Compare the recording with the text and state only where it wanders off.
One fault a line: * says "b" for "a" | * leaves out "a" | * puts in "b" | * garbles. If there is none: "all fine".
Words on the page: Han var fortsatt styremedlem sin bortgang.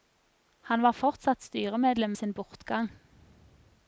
all fine